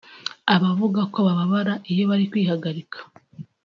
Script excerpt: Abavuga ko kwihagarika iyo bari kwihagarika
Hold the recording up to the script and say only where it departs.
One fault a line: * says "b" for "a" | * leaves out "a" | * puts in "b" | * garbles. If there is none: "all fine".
* says "bababara" for "kwihagarika"